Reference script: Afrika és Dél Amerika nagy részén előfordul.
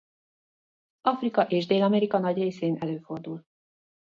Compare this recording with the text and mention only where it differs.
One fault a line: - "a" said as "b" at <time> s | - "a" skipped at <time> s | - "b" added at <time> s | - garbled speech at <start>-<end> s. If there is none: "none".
none